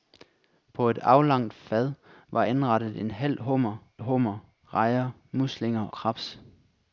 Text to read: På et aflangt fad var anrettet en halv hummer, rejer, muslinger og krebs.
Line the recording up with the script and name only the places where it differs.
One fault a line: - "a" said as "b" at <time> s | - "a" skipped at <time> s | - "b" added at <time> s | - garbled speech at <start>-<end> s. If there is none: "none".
- "hummer" added at 4.0 s
- "og" skipped at 5.9 s